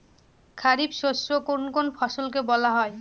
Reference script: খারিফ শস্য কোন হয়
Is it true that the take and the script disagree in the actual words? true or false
true